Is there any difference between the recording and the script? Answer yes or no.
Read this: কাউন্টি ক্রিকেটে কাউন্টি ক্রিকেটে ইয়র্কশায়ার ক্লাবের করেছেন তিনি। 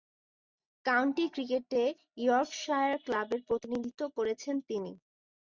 yes